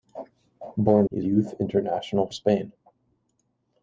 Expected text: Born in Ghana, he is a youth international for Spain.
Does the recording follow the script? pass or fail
fail